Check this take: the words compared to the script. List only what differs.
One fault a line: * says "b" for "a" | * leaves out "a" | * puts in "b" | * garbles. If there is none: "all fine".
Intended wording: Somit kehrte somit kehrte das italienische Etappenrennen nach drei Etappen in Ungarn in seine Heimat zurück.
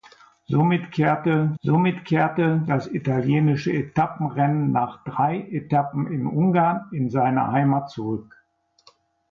all fine